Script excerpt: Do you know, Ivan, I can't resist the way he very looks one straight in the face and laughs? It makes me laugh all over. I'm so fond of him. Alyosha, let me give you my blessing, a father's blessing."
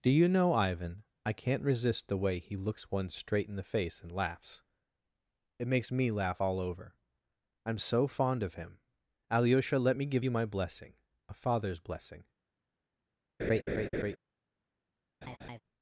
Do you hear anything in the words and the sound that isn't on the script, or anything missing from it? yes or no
yes